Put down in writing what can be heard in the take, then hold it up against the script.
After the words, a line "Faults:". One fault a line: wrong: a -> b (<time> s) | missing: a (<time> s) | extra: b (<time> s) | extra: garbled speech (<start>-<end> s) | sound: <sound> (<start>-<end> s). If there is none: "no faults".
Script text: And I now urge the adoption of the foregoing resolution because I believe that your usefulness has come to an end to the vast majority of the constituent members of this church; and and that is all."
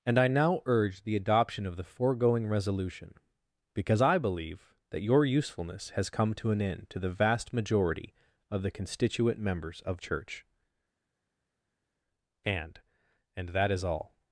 And I now urge the adoption of the foregoing resolution because I believe that your usefulness has come to an end to the vast majority of the constituent members of church; and and that is all."
Faults:
missing: this (10.0 s)